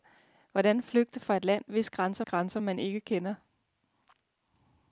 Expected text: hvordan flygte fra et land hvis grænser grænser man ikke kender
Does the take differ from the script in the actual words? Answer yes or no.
no